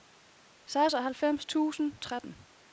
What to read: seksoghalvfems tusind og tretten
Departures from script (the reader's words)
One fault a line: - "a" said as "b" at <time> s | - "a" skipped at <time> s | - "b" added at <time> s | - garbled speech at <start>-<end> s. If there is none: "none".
none